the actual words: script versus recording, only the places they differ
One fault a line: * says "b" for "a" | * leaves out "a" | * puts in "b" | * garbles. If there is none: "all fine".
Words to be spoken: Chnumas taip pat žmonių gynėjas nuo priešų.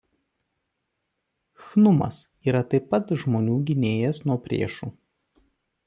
* puts in "yra"